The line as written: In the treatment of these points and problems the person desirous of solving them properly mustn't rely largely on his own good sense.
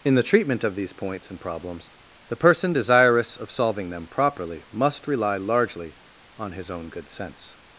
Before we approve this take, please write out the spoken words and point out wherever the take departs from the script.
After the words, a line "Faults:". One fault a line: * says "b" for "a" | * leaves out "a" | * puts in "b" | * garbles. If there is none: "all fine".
In the treatment of these points and problems the person desirous of solving them properly must rely largely on his own good sense.
Faults:
* says "must" for "mustn't"